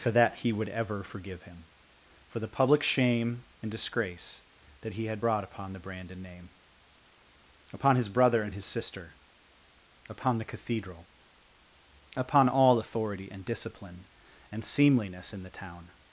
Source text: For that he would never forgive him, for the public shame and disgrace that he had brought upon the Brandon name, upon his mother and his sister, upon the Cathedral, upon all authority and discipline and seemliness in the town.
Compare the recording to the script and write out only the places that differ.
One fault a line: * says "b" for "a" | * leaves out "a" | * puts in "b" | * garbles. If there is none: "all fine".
* says "ever" for "never"
* says "brother" for "mother"